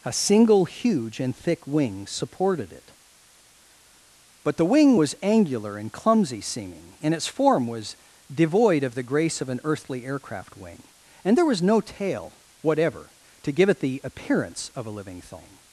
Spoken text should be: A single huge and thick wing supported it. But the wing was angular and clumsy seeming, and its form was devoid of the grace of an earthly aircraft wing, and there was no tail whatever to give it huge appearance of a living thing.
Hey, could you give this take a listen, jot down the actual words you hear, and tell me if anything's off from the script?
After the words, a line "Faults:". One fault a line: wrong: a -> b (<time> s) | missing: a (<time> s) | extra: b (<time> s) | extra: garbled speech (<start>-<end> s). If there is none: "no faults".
A single huge and thick wing supported it. But the wing was angular and clumsy seeming, and its form was devoid of the grace of an earthly aircraft wing, and there was no tail whatever to give it the appearance of a living thing.
Faults:
wrong: huge -> the (13.8 s)